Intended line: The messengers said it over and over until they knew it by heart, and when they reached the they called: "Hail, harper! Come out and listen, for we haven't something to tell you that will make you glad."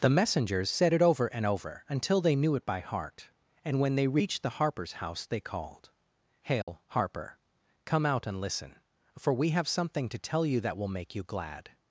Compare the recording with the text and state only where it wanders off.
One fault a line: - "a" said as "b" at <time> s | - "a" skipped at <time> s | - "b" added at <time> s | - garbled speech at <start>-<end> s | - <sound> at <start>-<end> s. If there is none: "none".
- "harper's house" added at 4.6 s
- dropout at 6.6-6.7 s
- "haven't" said as "have" at 9.5 s